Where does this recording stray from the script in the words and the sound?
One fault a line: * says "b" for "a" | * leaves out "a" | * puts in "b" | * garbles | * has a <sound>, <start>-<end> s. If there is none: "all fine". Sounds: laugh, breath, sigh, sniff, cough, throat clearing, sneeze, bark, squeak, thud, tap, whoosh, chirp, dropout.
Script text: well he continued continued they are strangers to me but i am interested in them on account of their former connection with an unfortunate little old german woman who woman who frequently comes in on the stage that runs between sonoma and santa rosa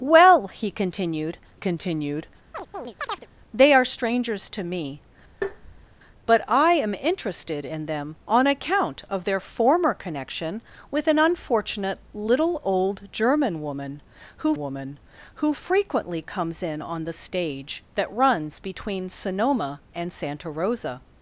* has a chirp, 2.5-3.3 s
* has a tap, 5.4-5.9 s